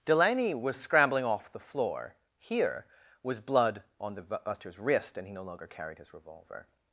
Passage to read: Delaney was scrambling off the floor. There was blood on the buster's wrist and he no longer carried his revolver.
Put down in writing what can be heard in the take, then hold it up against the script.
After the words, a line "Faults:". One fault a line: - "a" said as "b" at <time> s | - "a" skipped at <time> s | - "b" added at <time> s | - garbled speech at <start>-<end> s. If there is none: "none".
Delaney was scrambling off the floor. Here was blood on the buster's wrist and he no longer carried his revolver.
Faults:
- "There" said as "Here" at 2.4 s